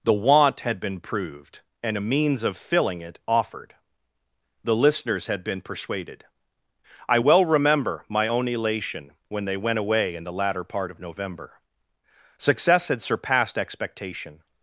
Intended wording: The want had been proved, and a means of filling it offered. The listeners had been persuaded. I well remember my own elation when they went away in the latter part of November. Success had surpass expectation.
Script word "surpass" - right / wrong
wrong